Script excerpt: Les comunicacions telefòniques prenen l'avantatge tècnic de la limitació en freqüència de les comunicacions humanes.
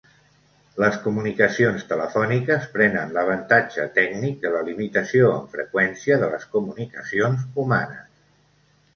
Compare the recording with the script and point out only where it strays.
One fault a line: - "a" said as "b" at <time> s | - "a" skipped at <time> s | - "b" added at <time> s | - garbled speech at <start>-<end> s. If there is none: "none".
none